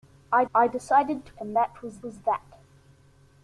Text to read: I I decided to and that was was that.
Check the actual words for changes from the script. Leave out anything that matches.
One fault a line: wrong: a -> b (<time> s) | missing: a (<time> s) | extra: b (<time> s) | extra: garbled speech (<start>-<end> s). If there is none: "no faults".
no faults